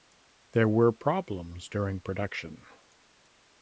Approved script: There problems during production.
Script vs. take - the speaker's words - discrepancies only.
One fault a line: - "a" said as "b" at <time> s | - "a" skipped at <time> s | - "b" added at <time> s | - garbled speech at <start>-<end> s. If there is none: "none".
- "were" added at 0.7 s